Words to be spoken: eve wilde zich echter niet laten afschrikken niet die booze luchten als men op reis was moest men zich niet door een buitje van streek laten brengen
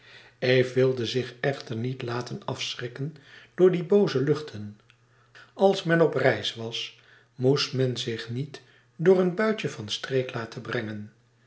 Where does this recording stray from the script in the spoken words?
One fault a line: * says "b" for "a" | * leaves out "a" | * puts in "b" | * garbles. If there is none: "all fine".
* says "door" for "niet"